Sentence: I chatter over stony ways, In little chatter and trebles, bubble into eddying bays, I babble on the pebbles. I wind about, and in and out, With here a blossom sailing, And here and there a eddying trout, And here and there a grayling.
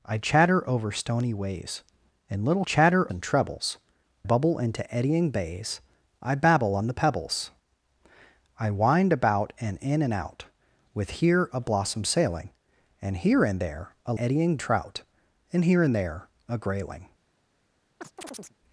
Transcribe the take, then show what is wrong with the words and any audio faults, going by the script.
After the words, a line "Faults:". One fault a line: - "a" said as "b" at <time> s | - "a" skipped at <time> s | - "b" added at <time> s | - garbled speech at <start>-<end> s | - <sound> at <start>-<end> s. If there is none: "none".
I chatter over stony ways, In little chatter and trebles, bubble into eddying bays, I babble on the pebbles. I wind about, and in and out, With here a blossom sailing, And here and there a eddying trout, And here and there a grayling.
Faults:
- chirp at 18.0-18.6 s